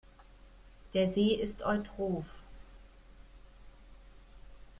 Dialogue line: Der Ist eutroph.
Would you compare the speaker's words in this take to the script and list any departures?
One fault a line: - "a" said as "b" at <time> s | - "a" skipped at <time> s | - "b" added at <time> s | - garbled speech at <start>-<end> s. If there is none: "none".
- "See" added at 1.1 s